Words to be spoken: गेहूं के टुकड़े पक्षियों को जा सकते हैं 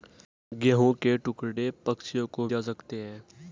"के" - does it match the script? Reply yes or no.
yes